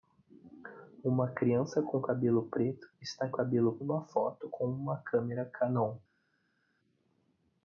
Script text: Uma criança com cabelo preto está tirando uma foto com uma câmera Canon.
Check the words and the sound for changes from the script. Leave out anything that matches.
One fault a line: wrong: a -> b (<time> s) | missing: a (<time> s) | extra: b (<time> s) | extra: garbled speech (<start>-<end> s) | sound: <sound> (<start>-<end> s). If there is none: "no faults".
wrong: tirando -> cabelo (3.3 s)